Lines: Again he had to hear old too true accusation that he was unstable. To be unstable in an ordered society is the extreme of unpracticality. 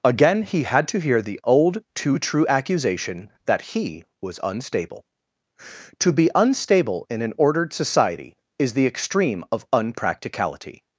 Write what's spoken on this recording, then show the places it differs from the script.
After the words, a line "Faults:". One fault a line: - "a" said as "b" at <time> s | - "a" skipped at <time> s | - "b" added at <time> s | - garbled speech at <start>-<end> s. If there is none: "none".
Again he had to hear the old too true accusation that he was unstable. To be unstable in an ordered society is the extreme of unpracticality.
Faults:
- "the" added at 1.2 s